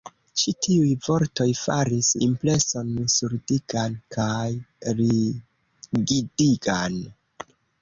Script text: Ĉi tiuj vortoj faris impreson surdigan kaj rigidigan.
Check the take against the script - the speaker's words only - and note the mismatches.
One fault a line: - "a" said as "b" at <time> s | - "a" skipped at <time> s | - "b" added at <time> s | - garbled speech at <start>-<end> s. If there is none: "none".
none